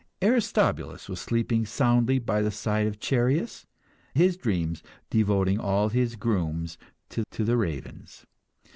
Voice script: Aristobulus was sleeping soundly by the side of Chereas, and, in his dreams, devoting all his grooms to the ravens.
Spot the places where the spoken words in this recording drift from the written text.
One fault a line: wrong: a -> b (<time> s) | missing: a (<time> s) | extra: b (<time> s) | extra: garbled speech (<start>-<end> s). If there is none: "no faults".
missing: and in (3.7 s)
extra: to (7.3 s)